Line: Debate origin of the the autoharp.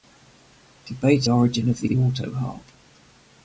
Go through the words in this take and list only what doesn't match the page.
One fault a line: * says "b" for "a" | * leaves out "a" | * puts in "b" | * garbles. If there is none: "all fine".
all fine